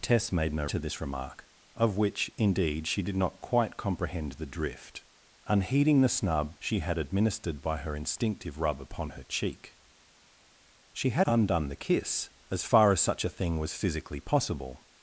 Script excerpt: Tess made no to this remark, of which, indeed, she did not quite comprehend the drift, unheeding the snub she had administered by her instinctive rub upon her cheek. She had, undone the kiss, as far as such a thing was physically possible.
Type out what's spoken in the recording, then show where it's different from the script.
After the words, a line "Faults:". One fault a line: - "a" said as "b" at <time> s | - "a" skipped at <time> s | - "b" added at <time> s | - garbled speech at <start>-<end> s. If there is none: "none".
Tess made no to this remark, of which, indeed, she did not quite comprehend the drift, unheeding the snub she had administered by her instinctive rub upon her cheek. She had, undone the kiss, as far as such a thing was physically possible.
Faults:
none